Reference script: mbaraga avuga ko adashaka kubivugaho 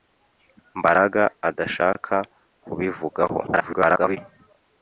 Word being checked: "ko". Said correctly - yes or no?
no